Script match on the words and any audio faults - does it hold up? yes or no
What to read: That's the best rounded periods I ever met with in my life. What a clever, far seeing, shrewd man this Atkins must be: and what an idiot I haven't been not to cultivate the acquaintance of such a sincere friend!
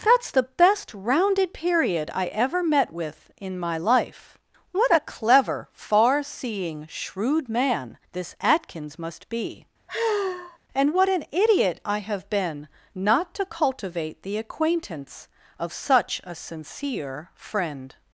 no